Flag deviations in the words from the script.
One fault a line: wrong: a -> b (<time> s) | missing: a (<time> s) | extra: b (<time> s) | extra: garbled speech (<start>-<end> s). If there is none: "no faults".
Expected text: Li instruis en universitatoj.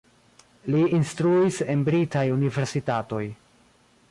extra: britaj (1.9 s)